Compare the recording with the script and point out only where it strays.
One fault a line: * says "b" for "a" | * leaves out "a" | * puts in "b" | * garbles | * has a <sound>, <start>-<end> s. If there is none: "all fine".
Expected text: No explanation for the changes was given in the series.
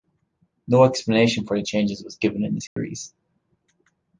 * has a dropout, 2.7-2.8 s